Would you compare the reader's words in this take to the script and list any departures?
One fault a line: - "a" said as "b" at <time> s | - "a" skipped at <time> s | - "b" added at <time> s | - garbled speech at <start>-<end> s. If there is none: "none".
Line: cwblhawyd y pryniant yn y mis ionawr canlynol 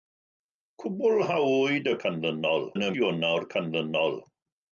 - "pryniant" said as "canlynol" at 2.0 s
- "mis" skipped at 2.9 s